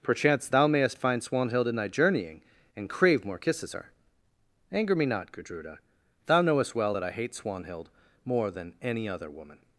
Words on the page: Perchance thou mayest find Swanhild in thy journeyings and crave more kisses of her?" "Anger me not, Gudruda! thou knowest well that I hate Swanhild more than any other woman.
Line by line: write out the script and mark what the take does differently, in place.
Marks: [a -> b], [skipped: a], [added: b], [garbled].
Perchance thou mayest find Swanhild in thy [journeyings -> journeying] and crave more kisses [skipped: of] her?" "Anger me not, Gudruda! thou knowest well that I hate Swanhild more than any other woman.